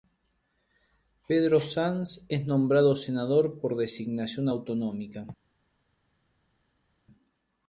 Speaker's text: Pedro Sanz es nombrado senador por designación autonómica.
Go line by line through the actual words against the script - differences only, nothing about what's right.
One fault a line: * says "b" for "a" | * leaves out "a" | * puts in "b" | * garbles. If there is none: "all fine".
all fine